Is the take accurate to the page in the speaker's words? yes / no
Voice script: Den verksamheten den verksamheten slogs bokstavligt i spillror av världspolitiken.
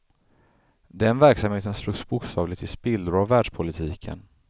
no